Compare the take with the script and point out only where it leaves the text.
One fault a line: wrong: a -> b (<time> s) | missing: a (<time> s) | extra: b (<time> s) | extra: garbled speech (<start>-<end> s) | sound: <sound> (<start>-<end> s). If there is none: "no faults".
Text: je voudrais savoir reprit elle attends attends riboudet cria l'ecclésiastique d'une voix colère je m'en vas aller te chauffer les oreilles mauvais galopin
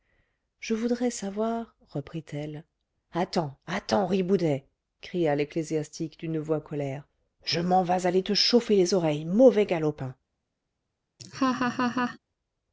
sound: laugh (11.2-12.2 s)